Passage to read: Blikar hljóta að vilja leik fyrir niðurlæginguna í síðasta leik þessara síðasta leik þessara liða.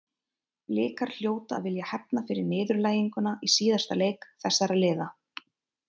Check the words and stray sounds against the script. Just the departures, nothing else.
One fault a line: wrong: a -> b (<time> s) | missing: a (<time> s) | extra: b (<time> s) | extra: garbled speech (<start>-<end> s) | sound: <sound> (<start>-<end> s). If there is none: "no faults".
wrong: leik -> hefna (1.9 s)
missing: síðasta leik þessara (4.8 s)